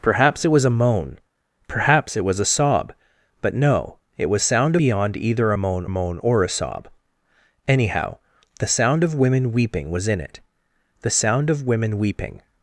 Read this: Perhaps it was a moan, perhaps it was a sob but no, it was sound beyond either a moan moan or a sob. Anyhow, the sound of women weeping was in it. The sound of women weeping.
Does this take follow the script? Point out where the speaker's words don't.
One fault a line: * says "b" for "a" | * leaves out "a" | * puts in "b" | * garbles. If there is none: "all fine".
all fine